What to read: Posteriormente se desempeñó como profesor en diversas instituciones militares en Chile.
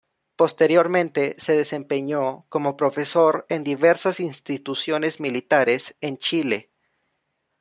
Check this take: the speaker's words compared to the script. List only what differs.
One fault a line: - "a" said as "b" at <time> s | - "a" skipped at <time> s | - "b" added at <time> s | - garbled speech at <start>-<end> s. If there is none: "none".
none